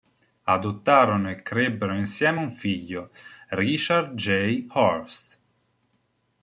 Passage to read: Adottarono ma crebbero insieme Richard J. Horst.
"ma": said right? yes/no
no